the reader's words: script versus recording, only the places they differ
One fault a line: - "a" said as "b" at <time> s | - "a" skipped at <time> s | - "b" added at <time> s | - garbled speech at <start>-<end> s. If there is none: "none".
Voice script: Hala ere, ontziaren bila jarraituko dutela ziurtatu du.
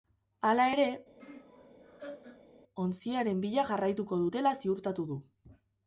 none